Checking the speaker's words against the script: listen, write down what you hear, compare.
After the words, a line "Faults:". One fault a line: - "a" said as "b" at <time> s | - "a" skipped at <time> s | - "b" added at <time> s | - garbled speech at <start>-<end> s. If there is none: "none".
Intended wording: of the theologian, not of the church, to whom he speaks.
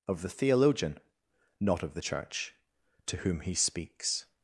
of the theologian, not of the church, to whom he speaks.
Faults:
none